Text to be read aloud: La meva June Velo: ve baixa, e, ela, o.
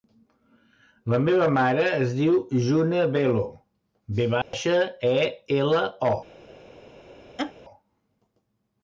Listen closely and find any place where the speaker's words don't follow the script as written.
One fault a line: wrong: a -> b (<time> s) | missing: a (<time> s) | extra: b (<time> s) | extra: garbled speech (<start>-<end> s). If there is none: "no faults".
extra: mare es diu (1.6 s)